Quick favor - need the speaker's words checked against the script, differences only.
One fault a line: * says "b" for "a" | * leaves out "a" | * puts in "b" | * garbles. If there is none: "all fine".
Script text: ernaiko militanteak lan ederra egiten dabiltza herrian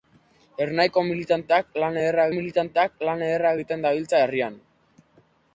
* puts in "militanteak lan ederra"